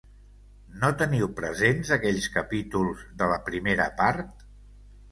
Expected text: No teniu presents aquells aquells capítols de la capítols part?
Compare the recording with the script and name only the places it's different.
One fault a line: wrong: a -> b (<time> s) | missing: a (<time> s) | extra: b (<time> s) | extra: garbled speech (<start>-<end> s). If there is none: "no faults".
missing: aquells (2.3 s)
wrong: capítols -> primera (3.5 s)